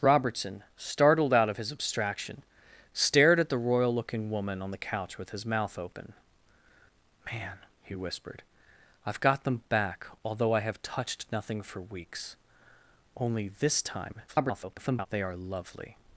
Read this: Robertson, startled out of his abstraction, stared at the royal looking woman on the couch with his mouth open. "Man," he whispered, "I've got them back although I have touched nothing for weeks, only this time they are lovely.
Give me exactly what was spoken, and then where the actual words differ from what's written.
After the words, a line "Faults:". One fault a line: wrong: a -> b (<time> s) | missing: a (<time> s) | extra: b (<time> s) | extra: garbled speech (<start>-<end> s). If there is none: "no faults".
Robertson, startled out of his abstraction, stared at the royal looking woman on the couch with his mouth open. "Man," he whispered, "I've got them back although I have touched nothing for weeks, only this time [garbled] they are lovely.
Faults:
extra: garbled speech (14.3-15.1 s)